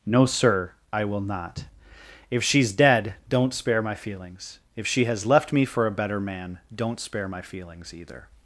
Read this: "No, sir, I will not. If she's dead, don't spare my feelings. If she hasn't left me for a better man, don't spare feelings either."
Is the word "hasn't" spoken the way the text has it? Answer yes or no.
no